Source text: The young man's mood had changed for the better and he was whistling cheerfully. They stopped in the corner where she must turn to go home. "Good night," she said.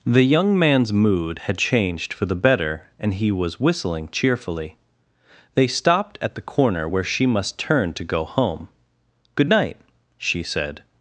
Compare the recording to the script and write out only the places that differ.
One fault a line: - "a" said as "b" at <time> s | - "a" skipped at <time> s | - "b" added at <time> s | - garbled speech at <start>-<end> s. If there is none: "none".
- "in" said as "at" at 6.2 s